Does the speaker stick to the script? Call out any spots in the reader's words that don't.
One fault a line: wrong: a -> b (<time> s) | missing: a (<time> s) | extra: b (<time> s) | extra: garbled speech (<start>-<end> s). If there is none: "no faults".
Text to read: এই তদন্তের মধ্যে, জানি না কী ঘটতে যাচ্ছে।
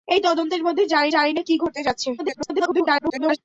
extra: জানি (1.1 s)
extra: garbled speech (2.2-3.4 s)